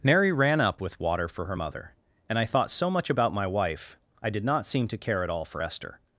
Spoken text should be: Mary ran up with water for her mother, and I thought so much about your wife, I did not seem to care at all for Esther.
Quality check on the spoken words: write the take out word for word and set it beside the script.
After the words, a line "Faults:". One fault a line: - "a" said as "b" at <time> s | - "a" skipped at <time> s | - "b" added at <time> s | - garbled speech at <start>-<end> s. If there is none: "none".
Mary ran up with water for her mother, and I thought so much about my wife, I did not seem to care at all for Esther.
Faults:
- "your" said as "my" at 3.3 s